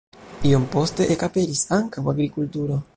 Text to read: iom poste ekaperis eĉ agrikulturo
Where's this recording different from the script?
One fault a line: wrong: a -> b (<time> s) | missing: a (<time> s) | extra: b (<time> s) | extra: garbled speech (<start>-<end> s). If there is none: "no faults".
wrong: eĉ -> ankaŭ (1.8 s)